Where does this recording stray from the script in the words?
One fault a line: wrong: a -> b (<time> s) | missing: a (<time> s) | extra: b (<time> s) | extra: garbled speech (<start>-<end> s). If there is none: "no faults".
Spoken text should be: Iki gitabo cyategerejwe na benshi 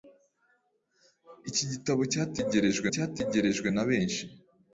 extra: cyategerejwe (2.9 s)